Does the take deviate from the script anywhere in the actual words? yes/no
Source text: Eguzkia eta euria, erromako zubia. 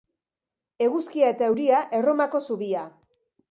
no